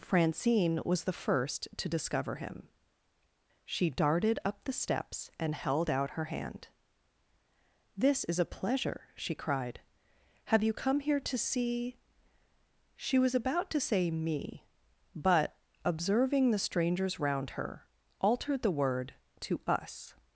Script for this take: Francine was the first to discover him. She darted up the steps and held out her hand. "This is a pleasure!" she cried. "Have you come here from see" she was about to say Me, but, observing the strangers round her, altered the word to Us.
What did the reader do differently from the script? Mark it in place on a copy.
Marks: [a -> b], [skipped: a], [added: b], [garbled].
Francine was the first to discover him. She darted up the steps and held out her hand. "This is a pleasure!" she cried. "Have you come here [from -> to] see" she was about to say Me, but, observing the strangers round her, altered the word to Us.